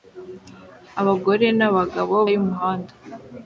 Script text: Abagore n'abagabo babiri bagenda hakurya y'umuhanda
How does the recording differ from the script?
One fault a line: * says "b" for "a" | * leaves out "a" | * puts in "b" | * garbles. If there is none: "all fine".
* leaves out "babiri bagenda hakurya"